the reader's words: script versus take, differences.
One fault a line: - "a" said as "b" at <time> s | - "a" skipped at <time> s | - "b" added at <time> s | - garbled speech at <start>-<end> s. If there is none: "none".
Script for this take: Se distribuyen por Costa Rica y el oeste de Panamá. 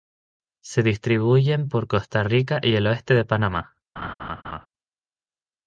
none